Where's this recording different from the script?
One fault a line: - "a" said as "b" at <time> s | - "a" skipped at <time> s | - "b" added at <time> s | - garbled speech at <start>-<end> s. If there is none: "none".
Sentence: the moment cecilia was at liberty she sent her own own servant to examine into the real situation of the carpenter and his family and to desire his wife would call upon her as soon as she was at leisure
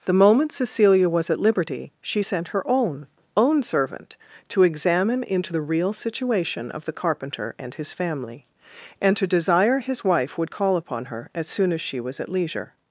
none